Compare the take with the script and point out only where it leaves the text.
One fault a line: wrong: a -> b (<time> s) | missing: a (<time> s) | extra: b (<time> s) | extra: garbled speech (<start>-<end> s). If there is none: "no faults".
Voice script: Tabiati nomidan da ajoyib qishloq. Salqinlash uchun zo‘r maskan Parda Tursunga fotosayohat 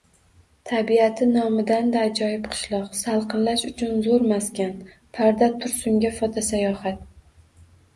no faults